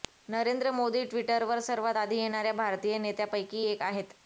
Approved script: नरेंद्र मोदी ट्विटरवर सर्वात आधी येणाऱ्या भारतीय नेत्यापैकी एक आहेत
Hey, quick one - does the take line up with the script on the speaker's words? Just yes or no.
yes